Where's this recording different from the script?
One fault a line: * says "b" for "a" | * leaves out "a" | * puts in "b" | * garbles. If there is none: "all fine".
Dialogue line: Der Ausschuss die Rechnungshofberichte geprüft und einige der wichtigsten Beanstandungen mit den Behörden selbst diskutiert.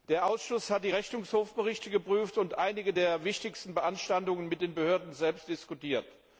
* puts in "hat"